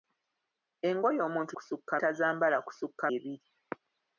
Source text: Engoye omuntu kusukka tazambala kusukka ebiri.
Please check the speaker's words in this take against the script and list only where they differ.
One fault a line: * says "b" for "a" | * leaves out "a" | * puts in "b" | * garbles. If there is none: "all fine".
all fine